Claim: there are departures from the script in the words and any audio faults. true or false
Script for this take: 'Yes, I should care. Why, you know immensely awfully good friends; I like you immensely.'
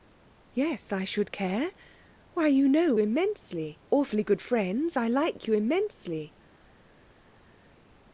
false